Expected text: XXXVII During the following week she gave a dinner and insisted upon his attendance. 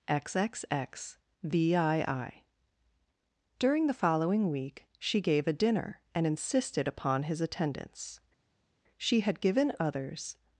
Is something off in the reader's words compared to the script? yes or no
yes